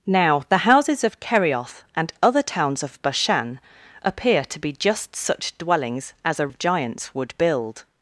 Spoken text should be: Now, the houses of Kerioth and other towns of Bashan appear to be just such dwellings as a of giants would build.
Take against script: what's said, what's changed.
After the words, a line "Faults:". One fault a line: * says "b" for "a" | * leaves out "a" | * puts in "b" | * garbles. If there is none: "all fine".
Now, the houses of Kerioth and other towns of Bashan appear to be just such dwellings as a of giants would build.
Faults:
all fine